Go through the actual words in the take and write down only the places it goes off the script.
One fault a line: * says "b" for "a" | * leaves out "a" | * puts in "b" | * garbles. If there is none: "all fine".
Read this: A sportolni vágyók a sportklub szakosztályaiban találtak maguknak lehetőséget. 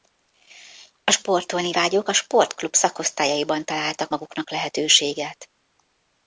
all fine